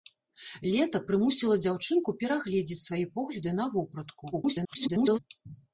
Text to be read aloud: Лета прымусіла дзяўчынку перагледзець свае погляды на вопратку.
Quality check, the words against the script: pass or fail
fail